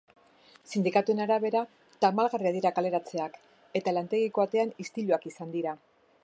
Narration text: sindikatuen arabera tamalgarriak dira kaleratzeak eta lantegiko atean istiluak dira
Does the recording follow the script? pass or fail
fail